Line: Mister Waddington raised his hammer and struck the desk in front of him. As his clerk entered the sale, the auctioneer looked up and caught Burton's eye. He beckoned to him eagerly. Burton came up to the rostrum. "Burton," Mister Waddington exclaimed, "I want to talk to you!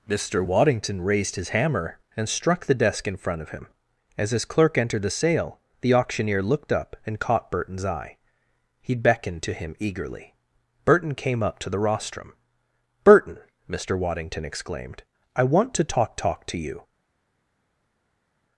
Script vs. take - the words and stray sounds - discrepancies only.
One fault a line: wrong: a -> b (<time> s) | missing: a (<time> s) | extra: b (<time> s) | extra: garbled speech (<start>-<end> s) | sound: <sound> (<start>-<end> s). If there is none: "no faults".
extra: talk (16.2 s)